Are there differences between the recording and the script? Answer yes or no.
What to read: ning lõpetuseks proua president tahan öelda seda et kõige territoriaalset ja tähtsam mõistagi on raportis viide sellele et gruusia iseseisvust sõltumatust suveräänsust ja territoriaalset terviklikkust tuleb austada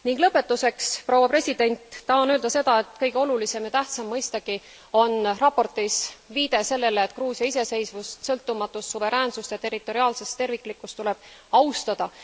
yes